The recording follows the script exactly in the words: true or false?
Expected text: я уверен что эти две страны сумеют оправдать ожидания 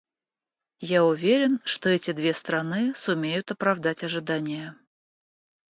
true